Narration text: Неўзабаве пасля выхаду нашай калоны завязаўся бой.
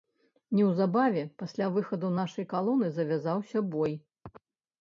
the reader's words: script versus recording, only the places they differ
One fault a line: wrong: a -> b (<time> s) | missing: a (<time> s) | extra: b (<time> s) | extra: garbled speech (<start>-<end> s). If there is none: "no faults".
no faults